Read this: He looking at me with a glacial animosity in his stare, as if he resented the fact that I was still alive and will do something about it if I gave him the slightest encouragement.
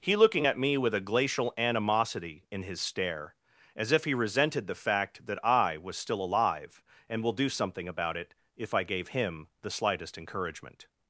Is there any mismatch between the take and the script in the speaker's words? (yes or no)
no